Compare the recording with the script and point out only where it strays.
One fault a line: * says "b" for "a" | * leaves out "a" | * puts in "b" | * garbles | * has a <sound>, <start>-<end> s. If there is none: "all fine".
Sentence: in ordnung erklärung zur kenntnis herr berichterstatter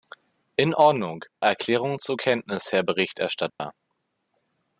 * has a dropout, 3.5-3.6 s